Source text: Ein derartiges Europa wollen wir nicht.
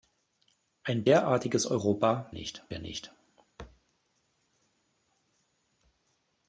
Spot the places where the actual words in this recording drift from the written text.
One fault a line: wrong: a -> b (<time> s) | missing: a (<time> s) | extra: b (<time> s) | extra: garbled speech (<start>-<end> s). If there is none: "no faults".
wrong: wollen -> nicht (2.3 s)